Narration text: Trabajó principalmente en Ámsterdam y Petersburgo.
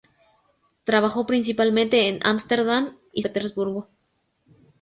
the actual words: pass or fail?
pass